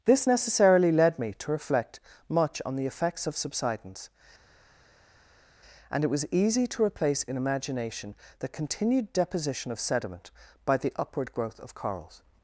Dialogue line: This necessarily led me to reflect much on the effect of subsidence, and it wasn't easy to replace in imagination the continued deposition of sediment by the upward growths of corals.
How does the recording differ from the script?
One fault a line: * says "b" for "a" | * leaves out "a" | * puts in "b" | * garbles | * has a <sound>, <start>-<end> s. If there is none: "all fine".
* says "effects" for "effect"
* says "was" for "wasn't"
* says "growth" for "growths"